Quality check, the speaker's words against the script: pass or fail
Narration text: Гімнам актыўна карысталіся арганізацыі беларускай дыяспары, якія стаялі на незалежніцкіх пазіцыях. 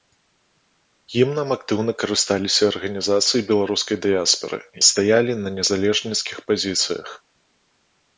fail